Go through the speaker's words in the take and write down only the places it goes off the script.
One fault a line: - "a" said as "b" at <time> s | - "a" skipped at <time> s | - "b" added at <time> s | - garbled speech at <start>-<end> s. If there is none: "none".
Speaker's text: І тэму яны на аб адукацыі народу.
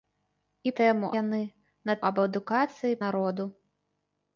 none